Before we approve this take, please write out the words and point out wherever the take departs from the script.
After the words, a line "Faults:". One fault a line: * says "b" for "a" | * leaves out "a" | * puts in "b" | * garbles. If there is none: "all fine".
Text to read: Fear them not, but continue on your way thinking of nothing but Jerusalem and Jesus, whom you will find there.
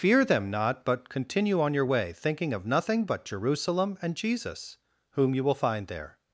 Fear them not, but continue on your way thinking of nothing but Jerusalem and Jesus, whom you will find there.
Faults:
all fine